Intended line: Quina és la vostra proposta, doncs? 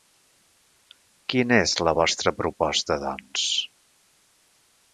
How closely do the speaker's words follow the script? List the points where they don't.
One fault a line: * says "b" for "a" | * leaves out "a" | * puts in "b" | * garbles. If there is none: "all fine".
all fine